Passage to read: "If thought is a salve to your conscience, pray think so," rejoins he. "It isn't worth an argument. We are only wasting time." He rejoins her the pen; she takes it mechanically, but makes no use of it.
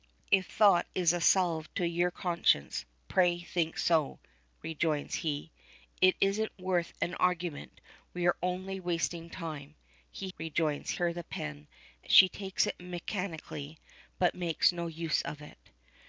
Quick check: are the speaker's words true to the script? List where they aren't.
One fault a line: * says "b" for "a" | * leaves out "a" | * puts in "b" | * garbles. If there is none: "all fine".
all fine